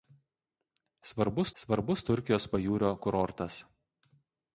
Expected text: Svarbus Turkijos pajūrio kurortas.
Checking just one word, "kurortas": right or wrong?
right